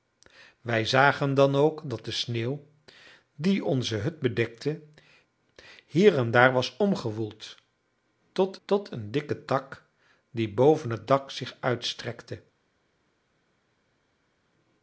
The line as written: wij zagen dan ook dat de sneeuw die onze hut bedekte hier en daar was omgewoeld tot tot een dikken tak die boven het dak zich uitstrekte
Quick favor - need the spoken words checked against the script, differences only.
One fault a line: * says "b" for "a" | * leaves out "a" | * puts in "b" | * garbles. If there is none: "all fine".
all fine